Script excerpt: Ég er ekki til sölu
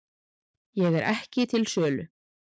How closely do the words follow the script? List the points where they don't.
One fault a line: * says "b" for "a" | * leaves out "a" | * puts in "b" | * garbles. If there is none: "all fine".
all fine